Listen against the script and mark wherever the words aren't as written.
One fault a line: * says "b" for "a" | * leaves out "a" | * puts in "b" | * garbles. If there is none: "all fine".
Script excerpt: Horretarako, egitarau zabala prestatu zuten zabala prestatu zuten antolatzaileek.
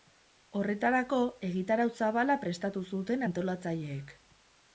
* leaves out "zabala prestatu zuten"